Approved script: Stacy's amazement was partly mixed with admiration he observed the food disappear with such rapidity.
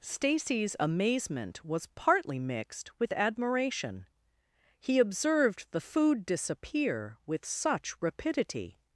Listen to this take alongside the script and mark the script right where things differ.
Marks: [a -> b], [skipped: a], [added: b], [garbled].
Stacy's amazement was partly mixed with admiration he observed the food disappear with such rapidity.